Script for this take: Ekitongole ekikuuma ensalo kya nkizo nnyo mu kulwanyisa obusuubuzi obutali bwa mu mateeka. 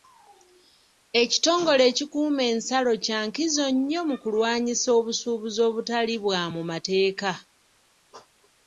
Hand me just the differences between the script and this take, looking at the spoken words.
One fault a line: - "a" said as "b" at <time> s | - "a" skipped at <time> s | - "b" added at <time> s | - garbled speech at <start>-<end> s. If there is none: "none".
none